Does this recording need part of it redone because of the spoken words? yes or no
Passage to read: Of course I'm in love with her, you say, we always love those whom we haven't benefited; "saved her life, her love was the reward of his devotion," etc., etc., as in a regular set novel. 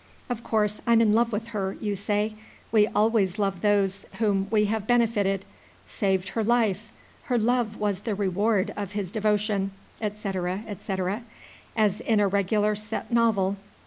yes